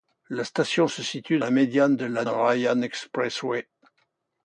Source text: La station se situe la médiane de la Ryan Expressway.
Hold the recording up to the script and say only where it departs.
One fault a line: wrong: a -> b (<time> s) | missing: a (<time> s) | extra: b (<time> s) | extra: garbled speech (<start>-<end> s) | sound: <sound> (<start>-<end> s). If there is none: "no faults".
no faults